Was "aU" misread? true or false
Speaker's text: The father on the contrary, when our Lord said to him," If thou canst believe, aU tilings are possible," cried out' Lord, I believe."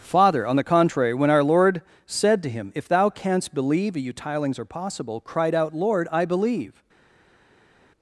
true